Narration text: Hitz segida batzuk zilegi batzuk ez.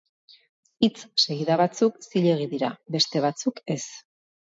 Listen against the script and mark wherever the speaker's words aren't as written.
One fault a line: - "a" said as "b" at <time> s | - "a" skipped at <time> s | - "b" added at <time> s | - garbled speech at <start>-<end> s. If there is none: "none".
- "dira beste" added at 2.6 s